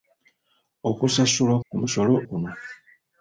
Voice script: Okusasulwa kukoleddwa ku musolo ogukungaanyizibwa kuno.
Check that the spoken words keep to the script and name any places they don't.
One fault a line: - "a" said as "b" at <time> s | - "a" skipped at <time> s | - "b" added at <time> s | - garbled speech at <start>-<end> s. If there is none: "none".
- "kukoleddwa" skipped at 1.6 s
- "ogukungaanyizibwa" skipped at 2.1 s